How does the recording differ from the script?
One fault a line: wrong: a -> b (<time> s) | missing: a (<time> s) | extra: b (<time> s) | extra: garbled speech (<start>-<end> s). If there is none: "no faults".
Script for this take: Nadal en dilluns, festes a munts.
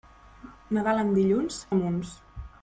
missing: festes (1.6 s)